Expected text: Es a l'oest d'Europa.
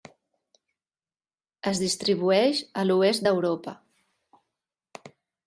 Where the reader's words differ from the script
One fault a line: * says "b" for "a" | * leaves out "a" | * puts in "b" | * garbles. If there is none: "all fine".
* puts in "distribueix"